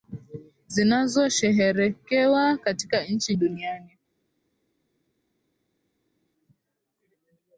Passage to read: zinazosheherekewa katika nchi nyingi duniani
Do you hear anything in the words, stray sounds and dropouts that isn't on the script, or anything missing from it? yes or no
yes